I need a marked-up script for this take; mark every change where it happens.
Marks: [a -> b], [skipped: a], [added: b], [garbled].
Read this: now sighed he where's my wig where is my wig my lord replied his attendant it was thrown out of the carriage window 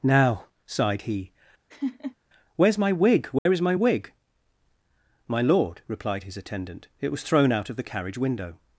now sighed he where's my wig where is my wig my lord replied his attendant it was thrown out of the carriage window